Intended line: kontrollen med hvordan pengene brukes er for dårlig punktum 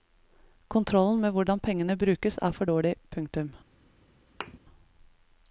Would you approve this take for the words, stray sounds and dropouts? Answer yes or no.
no